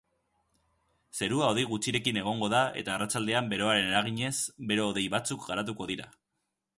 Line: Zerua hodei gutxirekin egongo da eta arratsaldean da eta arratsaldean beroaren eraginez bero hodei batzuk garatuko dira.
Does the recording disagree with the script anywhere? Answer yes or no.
yes